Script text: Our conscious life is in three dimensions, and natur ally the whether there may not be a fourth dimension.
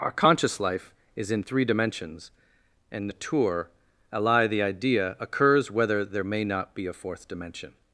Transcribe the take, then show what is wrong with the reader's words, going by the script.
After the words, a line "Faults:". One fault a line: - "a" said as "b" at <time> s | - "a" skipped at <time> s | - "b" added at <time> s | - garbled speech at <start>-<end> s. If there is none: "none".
Our conscious life is in three dimensions, and natur ally the idea occurs whether there may not be a fourth dimension.
Faults:
- "idea occurs" added at 4.6 s